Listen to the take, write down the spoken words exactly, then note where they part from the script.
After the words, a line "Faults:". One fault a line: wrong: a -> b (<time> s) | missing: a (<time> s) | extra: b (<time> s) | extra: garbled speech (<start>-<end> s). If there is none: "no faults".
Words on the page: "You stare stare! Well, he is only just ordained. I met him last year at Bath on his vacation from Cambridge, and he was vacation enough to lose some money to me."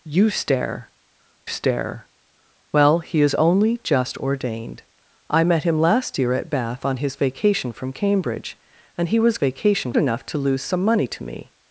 "You stare stare! Well, he is only just ordained. I met him last year at Bath on his vacation from Cambridge, and he was vacation enough to lose some money to me."
Faults:
no faults